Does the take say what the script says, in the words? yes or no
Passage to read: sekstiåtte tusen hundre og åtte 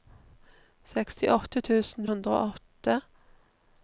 yes